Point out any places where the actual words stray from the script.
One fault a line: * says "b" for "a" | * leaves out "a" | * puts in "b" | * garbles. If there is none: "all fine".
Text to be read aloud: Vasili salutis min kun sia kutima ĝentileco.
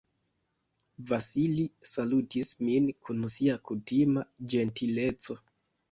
all fine